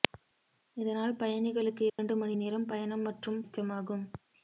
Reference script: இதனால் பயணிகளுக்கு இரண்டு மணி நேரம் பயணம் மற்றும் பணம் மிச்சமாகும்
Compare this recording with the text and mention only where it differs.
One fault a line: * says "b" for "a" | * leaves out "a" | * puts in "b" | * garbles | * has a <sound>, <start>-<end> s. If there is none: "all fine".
* has a dropout, 1.9-2.0 s
* leaves out "பணம்"